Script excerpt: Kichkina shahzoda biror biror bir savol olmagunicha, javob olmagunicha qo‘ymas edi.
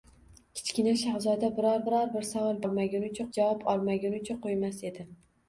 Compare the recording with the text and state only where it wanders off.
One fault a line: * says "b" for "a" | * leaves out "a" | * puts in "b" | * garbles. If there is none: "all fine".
all fine